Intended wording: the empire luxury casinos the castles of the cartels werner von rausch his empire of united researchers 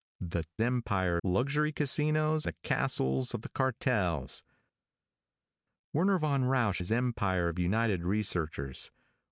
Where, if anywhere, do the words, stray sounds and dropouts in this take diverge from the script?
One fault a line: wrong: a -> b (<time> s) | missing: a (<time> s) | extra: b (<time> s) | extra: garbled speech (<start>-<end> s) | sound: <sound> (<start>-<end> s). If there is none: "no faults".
no faults